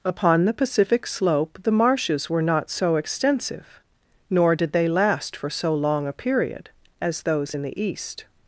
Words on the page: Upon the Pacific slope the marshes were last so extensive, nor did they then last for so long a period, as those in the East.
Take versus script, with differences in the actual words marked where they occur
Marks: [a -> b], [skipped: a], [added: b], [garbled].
Upon the Pacific slope the marshes were [last -> not] so extensive, nor did they [skipped: then] last for so long a period, as those in the East.